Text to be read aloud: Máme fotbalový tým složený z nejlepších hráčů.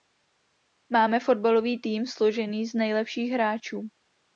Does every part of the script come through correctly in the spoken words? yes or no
yes